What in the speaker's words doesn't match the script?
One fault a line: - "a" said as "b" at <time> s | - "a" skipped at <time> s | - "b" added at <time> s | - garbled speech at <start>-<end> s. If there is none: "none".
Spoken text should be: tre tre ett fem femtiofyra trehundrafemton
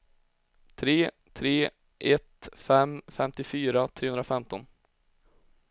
none